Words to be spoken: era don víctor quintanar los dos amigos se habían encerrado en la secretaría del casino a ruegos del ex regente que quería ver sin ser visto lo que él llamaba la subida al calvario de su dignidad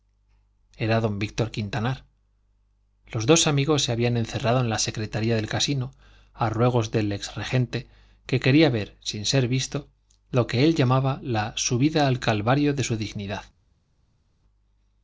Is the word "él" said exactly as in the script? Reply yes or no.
yes